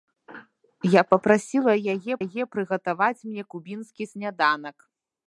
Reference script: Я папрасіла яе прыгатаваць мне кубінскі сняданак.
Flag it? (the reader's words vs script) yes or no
yes